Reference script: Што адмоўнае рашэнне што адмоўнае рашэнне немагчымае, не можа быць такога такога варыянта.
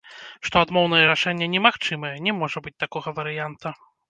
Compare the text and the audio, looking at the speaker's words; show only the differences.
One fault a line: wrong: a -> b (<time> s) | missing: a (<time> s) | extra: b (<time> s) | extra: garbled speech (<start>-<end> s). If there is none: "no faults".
missing: што адмоўнае рашэнне (1.5 s)
missing: такога (3.1 s)